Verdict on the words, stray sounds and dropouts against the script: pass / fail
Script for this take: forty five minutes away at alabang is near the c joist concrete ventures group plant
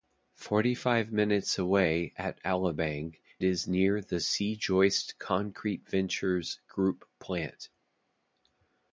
pass